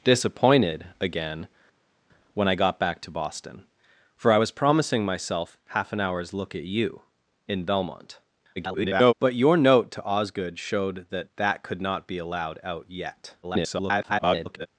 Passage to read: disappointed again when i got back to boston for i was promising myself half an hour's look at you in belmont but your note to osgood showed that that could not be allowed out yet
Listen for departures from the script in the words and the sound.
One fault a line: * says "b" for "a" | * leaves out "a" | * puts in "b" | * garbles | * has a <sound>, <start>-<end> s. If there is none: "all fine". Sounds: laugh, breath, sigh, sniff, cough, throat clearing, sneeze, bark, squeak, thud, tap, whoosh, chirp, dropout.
* garbles
* garbles